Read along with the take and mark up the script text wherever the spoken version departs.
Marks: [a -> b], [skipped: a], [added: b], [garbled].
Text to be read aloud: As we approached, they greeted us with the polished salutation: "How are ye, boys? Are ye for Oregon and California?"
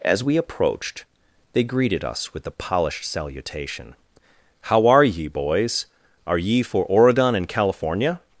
As we approached, they greeted us with the polished salutation: "How are ye, boys? Are ye for Oregon and California?"